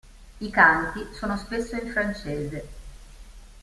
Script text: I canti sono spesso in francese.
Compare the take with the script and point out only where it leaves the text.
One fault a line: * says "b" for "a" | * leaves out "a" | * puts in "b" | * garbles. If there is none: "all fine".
all fine